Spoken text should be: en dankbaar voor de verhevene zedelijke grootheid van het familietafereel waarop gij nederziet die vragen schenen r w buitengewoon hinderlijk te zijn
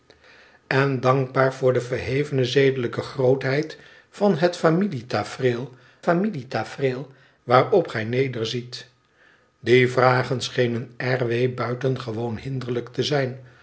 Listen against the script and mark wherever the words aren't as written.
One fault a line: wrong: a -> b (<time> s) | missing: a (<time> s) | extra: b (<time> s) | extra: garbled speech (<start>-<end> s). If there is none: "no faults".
extra: familietafereel (6.0 s)